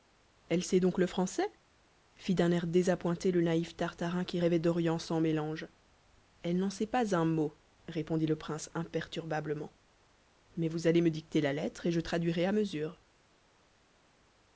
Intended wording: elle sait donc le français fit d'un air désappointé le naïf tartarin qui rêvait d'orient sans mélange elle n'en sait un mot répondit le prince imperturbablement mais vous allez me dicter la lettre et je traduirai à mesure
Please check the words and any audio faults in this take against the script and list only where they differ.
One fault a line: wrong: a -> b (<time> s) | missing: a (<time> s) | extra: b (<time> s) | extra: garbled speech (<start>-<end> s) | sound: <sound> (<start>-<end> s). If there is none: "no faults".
extra: pas (6.9 s)